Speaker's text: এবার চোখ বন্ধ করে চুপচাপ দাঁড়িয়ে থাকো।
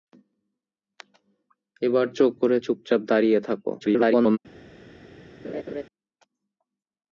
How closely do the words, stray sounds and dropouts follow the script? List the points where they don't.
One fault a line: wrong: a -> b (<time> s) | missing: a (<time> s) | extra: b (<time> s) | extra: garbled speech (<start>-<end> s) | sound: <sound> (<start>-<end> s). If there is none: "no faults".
missing: বন্ধ (2.3 s)
extra: garbled speech (3.8-4.4 s)
sound: laugh (5.4-5.8 s)